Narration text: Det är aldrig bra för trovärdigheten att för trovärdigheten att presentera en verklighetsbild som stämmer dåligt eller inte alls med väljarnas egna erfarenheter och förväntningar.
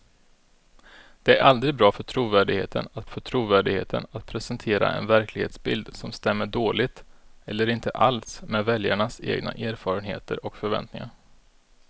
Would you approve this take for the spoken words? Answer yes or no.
yes